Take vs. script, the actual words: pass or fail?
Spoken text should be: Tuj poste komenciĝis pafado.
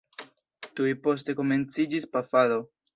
pass